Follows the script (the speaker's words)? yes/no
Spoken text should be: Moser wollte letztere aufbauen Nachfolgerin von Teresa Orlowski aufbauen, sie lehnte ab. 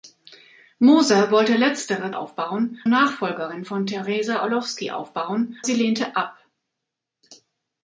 yes